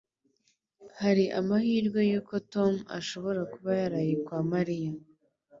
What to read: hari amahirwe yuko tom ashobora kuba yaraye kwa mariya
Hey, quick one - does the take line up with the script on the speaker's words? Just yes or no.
yes